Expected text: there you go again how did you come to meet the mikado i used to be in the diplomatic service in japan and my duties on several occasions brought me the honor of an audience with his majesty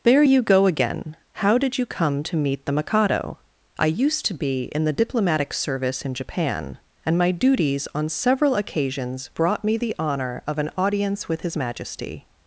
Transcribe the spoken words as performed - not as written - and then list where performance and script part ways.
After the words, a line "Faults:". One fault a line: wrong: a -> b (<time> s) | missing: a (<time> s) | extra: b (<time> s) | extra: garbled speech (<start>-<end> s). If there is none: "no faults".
there you go again how did you come to meet the mikado i used to be in the diplomatic service in japan and my duties on several occasions brought me the honor of an audience with his majesty
Faults:
no faults